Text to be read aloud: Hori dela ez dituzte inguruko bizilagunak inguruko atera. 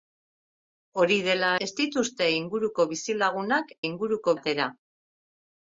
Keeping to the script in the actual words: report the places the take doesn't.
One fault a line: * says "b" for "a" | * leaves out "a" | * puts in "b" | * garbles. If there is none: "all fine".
all fine